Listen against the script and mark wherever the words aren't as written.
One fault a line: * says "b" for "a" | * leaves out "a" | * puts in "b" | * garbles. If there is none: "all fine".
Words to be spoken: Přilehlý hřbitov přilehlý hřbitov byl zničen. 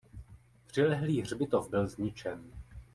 * leaves out "přilehlý hřbitov"